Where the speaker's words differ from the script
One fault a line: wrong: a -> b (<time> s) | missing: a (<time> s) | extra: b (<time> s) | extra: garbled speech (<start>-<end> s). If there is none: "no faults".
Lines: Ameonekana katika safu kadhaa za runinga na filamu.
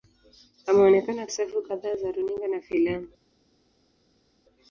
missing: katika (1.3 s)